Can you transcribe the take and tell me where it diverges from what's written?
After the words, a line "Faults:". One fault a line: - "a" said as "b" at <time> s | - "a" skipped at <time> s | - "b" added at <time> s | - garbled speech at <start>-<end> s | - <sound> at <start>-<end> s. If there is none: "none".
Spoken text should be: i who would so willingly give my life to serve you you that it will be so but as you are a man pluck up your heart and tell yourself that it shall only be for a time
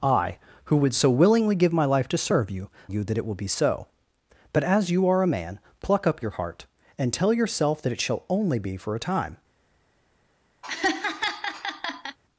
i who would so willingly give my life to serve you you that it will be so but as you are a man pluck up your heart and tell yourself that it shall only be for a time
Faults:
- laugh at 10.6-12.2 s